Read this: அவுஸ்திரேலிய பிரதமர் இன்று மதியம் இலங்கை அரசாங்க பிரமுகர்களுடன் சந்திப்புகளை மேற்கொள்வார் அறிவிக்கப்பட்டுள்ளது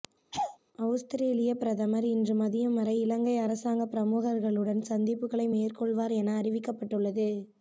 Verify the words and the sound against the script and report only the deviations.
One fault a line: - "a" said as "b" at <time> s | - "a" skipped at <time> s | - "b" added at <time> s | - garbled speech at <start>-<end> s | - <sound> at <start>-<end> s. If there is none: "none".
- laugh at 0.3-0.6 s
- "வரை" added at 2.8 s
- "என" added at 6.2 s